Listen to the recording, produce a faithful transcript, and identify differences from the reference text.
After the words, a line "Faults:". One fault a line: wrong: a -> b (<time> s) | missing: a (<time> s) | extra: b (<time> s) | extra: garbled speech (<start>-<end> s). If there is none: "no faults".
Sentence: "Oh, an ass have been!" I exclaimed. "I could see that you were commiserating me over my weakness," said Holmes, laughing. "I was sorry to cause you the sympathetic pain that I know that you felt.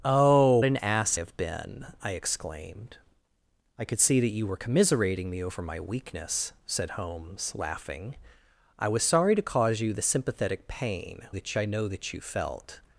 "Oh, an ass have been!" I exclaimed. "I could see that you were commiserating me over my weakness," said Holmes, laughing. "I was sorry to cause you the sympathetic pain that I know that you felt.
Faults:
no faults